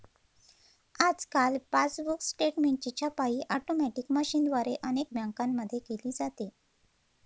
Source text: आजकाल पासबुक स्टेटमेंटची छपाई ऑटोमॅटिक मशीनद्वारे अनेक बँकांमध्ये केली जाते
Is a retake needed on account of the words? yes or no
no